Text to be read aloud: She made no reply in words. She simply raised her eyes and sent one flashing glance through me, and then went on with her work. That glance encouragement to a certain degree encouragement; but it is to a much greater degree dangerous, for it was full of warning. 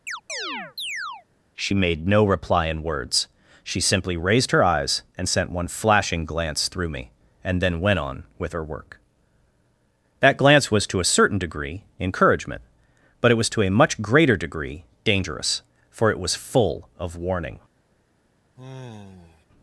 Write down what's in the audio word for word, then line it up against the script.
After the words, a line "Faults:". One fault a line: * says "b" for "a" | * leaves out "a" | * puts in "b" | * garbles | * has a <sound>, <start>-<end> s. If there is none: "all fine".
She made no reply in words. She simply raised her eyes and sent one flashing glance through me, and then went on with her work. That glance was to a certain degree encouragement; but it was to a much greater degree dangerous, for it was full of warning.
Faults:
* has a chirp, 0.1-1.3 s
* says "was" for "encouragement"
* says "was" for "is"
* has a sigh, 18.6-19.5 s